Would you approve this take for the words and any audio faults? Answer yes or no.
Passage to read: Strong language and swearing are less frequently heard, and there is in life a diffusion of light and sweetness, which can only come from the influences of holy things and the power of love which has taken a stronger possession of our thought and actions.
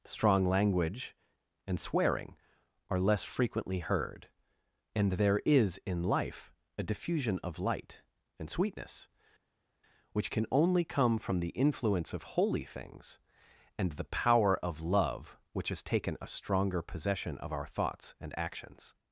no